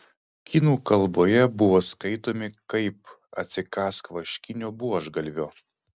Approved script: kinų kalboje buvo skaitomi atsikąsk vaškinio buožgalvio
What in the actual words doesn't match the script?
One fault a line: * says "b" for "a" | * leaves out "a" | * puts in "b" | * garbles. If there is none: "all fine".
* puts in "kaip"